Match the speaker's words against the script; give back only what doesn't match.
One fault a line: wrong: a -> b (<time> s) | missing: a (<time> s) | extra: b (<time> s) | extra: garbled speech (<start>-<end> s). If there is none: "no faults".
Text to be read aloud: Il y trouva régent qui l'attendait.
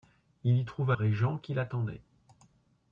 no faults